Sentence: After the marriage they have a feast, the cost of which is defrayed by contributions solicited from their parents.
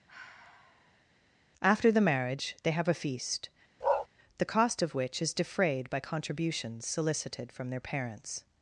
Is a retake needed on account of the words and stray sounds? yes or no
yes